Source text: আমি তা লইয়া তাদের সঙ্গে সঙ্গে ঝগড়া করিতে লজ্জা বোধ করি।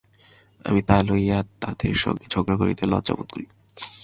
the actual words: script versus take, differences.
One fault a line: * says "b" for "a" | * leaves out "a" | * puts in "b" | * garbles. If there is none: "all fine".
* leaves out "সঙ্গে"